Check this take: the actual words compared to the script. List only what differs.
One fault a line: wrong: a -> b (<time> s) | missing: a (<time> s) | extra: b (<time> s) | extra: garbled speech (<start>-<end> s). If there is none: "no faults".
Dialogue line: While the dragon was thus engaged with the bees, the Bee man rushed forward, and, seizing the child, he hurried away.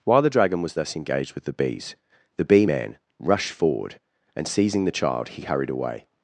no faults